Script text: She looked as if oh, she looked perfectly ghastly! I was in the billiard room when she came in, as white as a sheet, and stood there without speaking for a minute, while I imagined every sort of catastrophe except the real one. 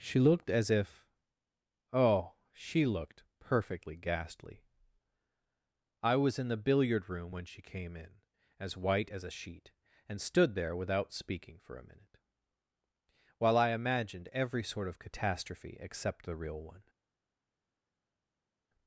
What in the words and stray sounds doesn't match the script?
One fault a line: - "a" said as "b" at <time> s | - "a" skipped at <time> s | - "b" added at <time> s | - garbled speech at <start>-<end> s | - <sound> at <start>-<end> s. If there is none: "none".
none